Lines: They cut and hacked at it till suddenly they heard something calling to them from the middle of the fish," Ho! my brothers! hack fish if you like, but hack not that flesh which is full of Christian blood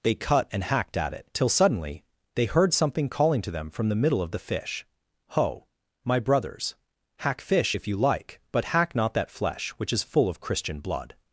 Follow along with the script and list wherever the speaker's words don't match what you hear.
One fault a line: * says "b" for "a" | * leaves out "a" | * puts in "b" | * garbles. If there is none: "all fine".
all fine